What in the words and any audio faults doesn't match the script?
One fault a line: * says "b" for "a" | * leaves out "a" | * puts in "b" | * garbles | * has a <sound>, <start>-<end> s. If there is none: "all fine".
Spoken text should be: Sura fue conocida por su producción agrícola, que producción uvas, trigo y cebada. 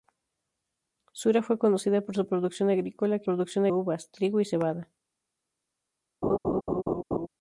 * has a laugh, 6.2-7.3 s